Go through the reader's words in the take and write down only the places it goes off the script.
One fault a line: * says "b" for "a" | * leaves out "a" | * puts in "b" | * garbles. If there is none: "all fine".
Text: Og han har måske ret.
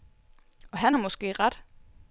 all fine